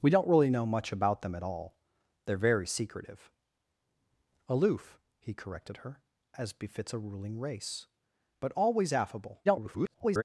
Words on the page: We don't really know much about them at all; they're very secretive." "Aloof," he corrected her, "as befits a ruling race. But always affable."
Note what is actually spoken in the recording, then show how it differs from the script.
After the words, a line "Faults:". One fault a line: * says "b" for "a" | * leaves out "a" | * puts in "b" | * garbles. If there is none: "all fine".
We don't really know much about them at all; they're very secretive." "Aloof," he corrected her, "as befits a ruling race. But always affable." [garbled]
Faults:
* garbles